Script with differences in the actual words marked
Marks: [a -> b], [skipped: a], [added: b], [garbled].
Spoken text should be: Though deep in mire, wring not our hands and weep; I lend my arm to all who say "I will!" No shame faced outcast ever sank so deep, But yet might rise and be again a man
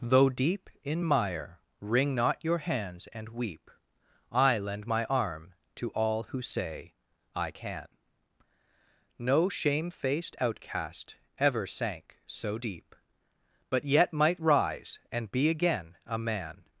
Though deep in mire, wring not [our -> your] hands and weep; I lend my arm to all who say "I [will!" -> can] No shame faced outcast ever sank so deep, But yet might rise and be again a man